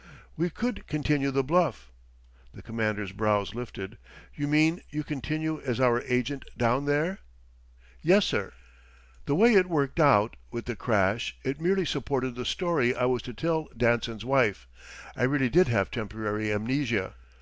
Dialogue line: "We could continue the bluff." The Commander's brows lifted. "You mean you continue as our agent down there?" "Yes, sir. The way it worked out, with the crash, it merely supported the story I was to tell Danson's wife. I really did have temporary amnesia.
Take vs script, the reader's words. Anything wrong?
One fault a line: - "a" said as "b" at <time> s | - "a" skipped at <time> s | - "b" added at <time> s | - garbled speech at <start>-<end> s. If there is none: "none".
none